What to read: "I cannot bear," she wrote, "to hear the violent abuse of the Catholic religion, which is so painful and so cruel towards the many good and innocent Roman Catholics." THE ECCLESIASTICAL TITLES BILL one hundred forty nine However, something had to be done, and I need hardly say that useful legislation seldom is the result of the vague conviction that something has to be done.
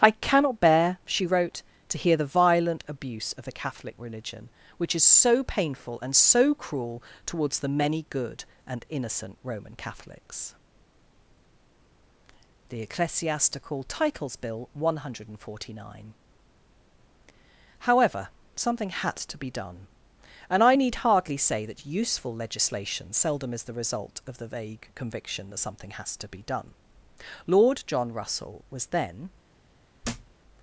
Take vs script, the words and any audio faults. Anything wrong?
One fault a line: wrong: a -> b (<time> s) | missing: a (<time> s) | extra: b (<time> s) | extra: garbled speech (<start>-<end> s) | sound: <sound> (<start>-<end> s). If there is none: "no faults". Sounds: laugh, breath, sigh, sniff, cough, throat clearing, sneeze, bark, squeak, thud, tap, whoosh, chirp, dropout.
extra: Lord John Russell was then (27.5 s)
sound: thud (30.0-30.3 s)